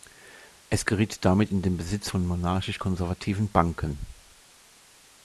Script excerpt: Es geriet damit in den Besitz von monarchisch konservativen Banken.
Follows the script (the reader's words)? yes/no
yes